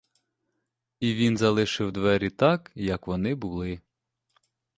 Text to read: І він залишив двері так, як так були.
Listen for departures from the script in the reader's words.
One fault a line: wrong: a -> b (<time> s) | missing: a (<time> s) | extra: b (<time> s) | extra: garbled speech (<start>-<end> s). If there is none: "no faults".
wrong: так -> вони (3.1 s)